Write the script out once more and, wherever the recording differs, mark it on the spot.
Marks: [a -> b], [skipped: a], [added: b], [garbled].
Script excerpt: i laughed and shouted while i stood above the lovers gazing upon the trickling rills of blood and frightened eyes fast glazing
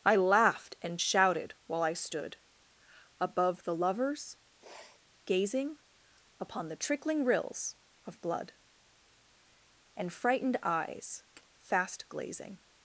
i laughed and shouted while i stood above the lovers gazing upon the trickling rills of blood and frightened eyes fast glazing